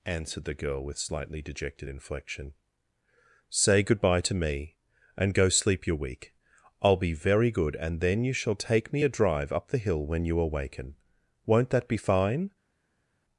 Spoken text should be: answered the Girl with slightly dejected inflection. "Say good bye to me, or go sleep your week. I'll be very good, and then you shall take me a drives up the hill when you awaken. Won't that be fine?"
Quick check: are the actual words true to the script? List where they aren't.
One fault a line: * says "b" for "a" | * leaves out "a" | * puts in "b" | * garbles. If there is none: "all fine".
* says "and" for "or"
* says "drive" for "drives"